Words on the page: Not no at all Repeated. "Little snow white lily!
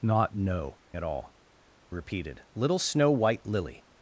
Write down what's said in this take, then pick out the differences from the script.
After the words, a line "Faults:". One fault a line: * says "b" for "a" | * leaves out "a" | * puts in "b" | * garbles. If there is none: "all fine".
Not no at all Repeated. "Little snow white lily!
Faults:
all fine